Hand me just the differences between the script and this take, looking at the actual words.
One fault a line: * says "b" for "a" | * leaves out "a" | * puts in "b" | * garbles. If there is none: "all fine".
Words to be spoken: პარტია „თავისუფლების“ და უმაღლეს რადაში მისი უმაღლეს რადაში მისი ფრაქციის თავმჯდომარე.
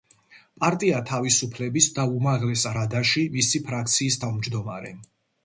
* leaves out "უმაღლეს რადაში მისი"